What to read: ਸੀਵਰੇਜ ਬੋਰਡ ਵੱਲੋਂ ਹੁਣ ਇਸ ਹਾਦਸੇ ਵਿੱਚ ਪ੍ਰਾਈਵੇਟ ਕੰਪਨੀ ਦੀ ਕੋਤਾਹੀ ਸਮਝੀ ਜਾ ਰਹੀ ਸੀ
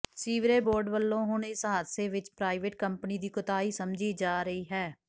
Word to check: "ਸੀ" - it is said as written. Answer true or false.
false